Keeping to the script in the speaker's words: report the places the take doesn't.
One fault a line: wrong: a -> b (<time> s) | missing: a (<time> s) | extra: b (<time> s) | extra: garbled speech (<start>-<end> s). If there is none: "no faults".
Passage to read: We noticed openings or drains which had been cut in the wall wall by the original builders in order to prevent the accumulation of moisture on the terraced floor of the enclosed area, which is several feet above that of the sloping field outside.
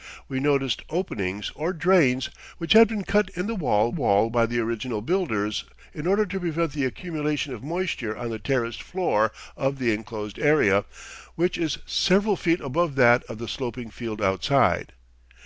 no faults